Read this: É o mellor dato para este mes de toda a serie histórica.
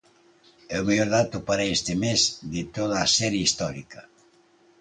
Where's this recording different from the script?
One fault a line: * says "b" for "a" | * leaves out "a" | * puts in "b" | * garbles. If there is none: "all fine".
all fine